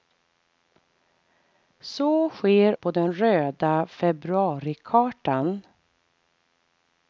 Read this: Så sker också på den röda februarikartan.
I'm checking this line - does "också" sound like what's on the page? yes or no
no